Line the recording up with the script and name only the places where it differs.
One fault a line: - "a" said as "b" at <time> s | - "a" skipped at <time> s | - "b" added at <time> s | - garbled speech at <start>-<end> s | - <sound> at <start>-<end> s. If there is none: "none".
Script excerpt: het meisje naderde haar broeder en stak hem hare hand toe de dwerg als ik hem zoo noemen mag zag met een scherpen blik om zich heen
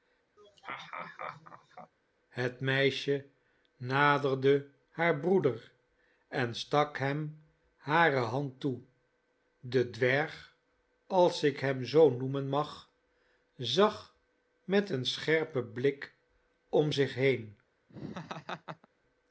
- laugh at 0.4-1.9 s
- laugh at 17.9-18.9 s